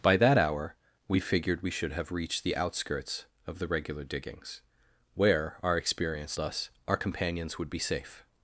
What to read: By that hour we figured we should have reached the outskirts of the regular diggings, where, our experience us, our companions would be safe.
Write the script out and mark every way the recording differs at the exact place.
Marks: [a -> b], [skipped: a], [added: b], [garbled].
By that hour we figured we should have reached the outskirts of the regular diggings, where, our experience us, our companions would be safe.